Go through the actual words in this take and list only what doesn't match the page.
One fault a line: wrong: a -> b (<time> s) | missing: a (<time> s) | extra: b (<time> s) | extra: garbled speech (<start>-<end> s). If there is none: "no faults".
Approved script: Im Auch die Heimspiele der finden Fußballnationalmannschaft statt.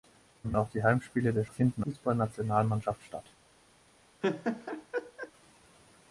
no faults